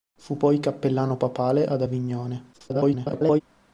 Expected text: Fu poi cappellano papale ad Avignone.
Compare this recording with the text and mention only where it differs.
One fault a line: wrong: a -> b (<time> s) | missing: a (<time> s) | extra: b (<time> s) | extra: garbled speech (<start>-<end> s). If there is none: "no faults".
extra: garbled speech (2.5-3.4 s)